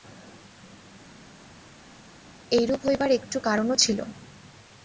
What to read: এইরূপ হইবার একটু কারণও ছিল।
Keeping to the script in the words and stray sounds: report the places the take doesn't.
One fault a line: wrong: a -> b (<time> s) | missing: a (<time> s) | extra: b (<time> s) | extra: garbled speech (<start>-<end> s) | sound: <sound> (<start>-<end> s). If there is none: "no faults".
no faults